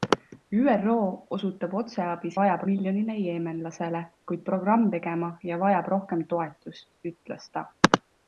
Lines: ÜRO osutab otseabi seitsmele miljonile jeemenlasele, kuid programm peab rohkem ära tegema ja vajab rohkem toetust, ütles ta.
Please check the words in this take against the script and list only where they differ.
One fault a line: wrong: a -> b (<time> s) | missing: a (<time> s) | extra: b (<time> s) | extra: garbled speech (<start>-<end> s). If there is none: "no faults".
wrong: seitsmele -> vajab (2.4 s)
missing: peab rohkem ära (4.9 s)